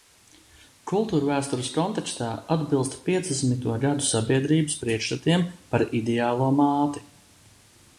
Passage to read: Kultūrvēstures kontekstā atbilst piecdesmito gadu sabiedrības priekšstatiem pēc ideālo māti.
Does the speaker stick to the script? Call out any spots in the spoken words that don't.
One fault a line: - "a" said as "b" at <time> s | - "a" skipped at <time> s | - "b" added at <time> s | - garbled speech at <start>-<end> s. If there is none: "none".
- "pēc" said as "par" at 5.7 s